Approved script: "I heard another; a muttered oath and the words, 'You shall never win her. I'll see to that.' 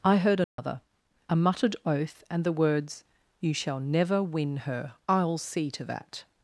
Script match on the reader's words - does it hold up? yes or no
yes